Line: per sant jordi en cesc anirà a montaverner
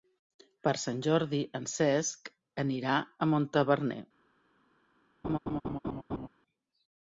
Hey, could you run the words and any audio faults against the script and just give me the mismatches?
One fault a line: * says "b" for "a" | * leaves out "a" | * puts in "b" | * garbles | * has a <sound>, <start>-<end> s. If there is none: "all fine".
* has a laugh, 5.2-6.3 s